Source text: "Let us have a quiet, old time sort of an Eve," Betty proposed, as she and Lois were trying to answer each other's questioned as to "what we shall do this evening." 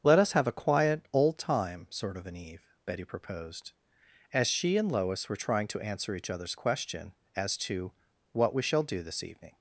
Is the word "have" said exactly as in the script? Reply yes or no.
yes